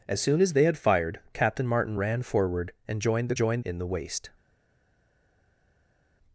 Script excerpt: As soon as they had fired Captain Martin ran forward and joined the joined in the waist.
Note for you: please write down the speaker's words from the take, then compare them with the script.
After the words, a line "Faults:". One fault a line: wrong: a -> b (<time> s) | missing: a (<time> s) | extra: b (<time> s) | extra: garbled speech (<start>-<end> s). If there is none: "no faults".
As soon as they had fired Captain Martin ran forward and joined the joined in the waist.
Faults:
no faults